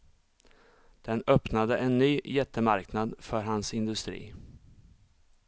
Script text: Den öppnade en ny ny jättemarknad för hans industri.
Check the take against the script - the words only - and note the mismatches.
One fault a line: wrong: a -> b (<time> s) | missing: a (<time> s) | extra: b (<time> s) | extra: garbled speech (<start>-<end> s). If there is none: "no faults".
missing: ny (2.2 s)